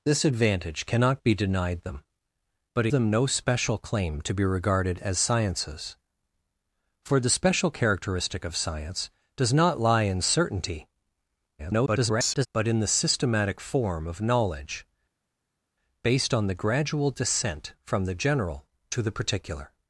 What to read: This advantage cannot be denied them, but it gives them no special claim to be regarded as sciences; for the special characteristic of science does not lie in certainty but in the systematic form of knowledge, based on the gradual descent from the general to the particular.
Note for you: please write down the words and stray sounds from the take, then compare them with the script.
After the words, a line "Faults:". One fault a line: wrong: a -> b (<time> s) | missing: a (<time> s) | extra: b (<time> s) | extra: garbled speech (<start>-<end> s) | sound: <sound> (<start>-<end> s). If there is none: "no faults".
This advantage cannot be denied them, but them no special claim to be regarded as sciences; for the special characteristic of science does not lie in certainty [garbled] but in the systematic form of knowledge, based on the gradual descent from the general to the particular.
Faults:
missing: it gives (2.9 s)
extra: garbled speech (11.6-12.5 s)